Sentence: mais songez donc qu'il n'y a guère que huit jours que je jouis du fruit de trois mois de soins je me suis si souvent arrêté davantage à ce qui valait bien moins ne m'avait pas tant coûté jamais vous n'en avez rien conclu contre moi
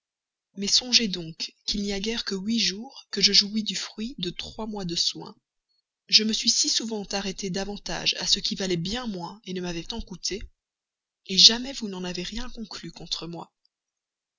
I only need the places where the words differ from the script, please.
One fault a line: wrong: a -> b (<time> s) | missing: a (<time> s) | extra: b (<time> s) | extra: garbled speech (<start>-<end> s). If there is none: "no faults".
missing: pas (9.8 s)